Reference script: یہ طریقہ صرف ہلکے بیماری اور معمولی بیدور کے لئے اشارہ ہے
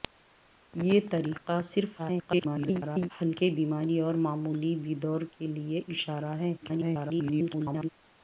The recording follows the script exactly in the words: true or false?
false